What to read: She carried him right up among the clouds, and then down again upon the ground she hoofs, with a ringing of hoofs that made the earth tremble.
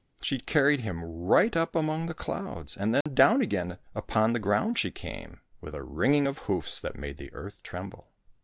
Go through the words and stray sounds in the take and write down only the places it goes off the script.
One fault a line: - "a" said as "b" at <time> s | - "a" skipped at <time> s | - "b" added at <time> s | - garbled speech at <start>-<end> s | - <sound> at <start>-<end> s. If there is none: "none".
- dropout at 3.0-3.1 s
- "hoofs" said as "came" at 4.9 s